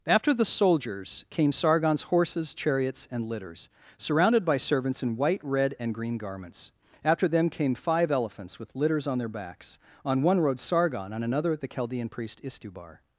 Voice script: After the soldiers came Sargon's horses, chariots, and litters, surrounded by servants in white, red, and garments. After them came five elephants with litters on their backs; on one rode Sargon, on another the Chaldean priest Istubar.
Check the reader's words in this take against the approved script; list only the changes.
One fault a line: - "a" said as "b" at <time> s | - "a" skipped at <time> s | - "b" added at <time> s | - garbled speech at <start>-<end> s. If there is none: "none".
- "green" added at 5.9 s